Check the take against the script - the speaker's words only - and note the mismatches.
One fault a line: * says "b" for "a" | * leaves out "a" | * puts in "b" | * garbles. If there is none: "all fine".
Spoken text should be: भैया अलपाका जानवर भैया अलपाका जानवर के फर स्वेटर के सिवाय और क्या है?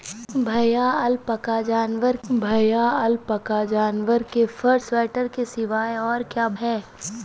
all fine